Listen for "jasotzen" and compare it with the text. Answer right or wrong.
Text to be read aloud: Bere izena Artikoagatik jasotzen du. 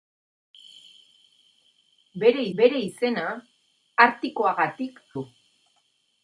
wrong